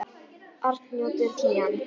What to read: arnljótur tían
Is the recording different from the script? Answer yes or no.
no